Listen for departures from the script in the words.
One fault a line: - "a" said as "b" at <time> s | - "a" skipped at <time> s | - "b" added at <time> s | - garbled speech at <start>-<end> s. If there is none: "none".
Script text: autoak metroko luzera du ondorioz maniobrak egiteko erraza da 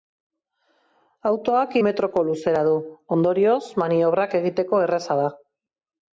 none